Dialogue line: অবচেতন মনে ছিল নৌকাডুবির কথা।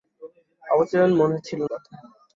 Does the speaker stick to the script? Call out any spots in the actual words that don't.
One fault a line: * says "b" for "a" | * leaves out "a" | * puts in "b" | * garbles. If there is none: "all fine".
* leaves out "নৌকাডুবির"